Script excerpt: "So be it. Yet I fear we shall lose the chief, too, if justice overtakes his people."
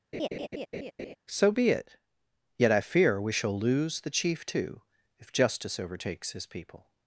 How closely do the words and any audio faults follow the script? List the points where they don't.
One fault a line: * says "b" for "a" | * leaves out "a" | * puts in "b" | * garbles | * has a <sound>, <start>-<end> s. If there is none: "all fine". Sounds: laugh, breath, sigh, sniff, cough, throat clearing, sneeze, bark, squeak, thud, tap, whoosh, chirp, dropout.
* has a laugh, 0.1-1.2 s